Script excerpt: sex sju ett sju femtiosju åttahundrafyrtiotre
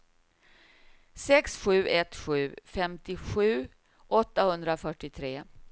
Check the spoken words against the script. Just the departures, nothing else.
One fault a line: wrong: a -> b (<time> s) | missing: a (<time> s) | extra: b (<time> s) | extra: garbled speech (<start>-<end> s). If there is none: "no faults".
no faults